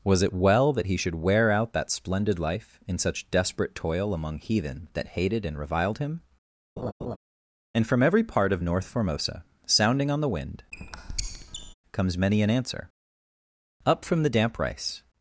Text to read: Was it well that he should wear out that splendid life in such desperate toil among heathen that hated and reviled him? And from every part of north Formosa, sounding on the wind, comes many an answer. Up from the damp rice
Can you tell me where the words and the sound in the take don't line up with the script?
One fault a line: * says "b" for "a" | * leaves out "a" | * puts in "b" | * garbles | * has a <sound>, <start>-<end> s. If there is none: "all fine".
* has a laugh, 6.8-7.2 s
* has a squeak, 10.7-11.7 s